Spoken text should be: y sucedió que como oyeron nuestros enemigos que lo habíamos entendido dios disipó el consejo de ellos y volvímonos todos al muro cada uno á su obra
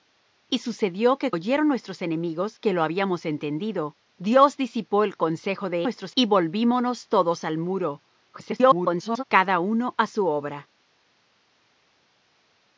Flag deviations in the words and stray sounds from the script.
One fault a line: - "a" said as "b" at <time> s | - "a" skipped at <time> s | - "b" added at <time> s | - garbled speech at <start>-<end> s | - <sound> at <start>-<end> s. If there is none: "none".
- "como" skipped at 1.3 s
- "ellos" said as "nuestros" at 5.8 s
- garbled speech at 8.3-9.2 s